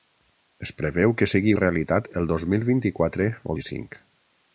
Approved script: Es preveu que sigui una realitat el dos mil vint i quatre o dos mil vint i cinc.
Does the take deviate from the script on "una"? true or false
true